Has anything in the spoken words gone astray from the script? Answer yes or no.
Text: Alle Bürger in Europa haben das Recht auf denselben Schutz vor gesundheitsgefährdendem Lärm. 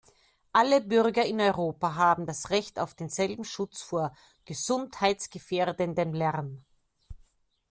no